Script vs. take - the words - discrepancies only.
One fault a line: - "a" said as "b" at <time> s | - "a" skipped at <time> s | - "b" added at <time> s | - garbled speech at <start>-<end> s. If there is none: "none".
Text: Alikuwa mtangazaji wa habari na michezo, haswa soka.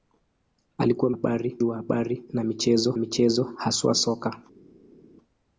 - "mtangazaji" said as "habari" at 1.1 s
- "michezo" added at 3.0 s